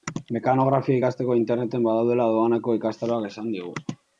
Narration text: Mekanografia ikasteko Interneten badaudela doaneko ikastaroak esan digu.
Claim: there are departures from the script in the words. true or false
false